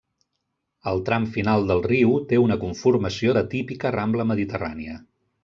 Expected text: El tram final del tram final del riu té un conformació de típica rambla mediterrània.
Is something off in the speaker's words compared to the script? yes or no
yes